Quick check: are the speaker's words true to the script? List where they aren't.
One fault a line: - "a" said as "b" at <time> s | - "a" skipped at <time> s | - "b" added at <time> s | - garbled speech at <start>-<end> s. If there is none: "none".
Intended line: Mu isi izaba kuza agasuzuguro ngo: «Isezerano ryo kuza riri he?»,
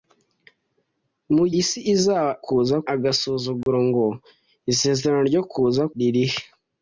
none